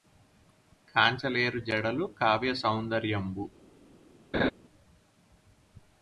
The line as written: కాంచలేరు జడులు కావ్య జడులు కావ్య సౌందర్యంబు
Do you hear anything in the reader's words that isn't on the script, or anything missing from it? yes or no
yes